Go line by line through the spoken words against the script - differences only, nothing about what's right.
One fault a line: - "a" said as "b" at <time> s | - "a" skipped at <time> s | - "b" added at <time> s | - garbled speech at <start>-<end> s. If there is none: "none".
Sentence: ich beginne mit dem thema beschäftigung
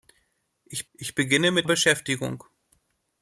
- "ich" added at 0.9 s
- "dem thema" skipped at 1.7 s